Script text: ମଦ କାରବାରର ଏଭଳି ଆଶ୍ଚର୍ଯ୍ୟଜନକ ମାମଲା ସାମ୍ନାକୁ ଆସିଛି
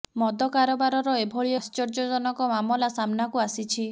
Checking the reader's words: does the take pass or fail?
pass